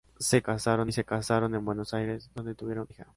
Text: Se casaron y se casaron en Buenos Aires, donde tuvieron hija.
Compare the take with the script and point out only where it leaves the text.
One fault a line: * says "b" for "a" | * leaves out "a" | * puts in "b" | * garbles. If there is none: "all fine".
all fine